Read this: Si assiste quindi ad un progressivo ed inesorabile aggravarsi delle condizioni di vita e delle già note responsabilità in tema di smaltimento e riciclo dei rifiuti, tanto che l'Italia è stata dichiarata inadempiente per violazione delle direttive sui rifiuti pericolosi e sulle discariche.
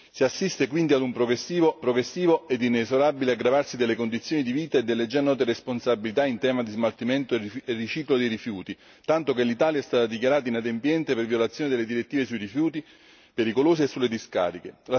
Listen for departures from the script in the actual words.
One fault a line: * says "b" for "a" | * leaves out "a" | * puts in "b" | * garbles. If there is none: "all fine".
* puts in "progressivo"